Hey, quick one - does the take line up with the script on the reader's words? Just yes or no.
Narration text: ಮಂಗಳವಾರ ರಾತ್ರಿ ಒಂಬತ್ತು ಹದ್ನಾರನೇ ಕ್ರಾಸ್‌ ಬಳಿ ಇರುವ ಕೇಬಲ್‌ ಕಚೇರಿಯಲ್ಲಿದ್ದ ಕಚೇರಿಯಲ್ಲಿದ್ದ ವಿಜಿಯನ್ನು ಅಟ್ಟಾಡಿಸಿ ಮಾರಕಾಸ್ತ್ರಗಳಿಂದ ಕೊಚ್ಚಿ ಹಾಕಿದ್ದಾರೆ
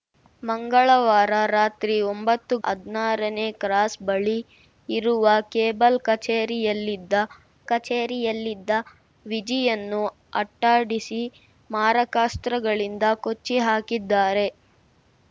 yes